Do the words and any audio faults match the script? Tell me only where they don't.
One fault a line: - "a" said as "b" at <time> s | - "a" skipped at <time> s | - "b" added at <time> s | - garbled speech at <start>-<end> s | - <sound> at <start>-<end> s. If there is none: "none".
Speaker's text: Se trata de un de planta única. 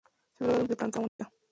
- dropout at 1.1-1.2 s